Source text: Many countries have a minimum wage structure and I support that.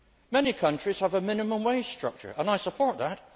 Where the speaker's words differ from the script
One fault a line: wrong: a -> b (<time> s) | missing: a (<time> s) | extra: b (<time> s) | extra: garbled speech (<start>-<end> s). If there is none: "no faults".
no faults